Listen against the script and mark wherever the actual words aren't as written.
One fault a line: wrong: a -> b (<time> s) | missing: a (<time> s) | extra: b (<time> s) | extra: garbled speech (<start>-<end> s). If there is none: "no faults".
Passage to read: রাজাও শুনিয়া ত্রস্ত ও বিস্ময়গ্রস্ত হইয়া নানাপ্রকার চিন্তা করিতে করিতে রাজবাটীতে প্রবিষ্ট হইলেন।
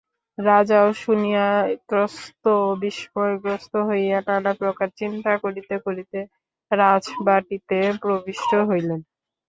no faults